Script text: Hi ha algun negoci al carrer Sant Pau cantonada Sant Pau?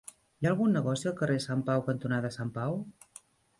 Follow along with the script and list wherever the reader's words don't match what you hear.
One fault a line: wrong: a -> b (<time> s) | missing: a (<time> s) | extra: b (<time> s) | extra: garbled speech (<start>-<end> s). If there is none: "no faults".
no faults